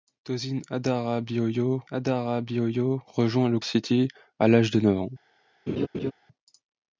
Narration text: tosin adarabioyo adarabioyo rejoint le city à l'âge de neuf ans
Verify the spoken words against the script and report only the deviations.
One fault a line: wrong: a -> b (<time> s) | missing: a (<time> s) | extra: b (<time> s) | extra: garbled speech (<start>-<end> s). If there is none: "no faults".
no faults